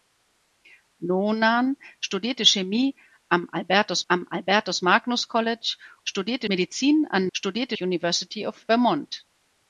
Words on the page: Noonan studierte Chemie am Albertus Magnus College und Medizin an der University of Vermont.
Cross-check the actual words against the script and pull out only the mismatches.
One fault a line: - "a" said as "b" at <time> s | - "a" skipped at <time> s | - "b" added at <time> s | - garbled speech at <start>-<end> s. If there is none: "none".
- "am Albertus" added at 4.1 s
- "und" said as "studierte" at 6.0 s
- "der" said as "studierte" at 7.3 s